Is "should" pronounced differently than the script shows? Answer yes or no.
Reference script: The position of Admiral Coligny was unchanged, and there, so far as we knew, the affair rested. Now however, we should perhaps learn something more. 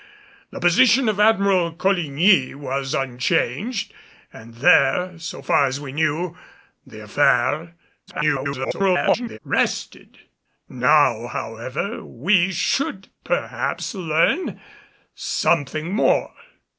no